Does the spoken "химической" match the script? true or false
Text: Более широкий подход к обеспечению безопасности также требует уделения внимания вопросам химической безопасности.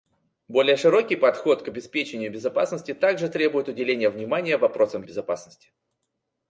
false